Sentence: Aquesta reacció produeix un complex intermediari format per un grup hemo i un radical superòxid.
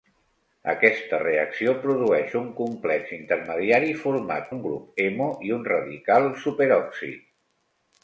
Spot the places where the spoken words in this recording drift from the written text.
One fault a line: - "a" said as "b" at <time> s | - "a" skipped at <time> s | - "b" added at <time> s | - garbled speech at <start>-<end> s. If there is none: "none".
- "per" skipped at 4.5 s